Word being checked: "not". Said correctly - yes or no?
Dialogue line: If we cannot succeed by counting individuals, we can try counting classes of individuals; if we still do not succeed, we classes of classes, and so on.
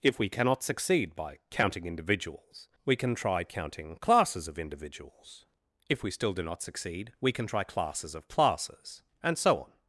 yes